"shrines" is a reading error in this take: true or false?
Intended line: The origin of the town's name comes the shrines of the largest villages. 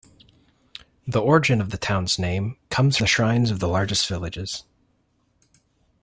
false